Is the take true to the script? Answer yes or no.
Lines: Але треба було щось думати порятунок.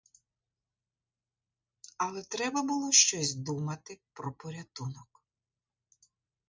no